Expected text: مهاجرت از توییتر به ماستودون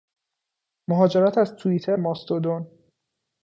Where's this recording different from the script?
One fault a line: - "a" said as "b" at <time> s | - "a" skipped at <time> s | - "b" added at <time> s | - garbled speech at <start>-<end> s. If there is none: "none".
- "به" skipped at 2.0 s